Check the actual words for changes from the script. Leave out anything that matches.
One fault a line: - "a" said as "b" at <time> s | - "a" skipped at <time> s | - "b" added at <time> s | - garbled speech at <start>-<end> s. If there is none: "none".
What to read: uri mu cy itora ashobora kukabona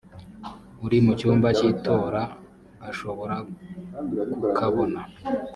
- "cyumba" added at 1.2 s